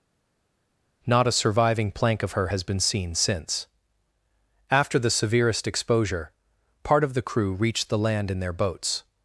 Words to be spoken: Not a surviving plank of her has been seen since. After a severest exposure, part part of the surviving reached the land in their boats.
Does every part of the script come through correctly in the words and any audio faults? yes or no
no